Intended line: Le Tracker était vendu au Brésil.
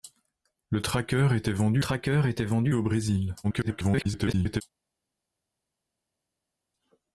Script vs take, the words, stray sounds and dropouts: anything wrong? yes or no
yes